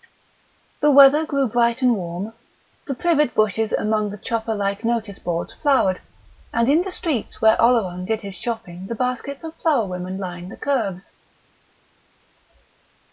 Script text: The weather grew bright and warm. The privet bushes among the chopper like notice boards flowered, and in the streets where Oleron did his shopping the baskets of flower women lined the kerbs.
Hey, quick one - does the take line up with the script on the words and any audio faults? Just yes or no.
yes